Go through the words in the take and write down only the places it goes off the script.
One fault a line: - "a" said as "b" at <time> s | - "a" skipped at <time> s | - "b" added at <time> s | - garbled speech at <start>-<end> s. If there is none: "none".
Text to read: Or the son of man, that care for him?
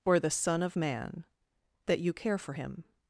- "you" added at 2.0 s